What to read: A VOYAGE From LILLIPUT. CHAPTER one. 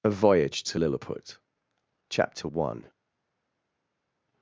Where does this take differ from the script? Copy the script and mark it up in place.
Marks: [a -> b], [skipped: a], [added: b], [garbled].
A VOYAGE [From -> TO] LILLIPUT. CHAPTER one.